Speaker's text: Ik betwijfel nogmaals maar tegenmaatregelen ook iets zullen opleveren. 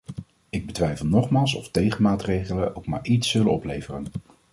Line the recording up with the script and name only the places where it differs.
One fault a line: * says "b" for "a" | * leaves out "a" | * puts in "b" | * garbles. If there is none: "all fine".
* says "of" for "maar"
* puts in "maar"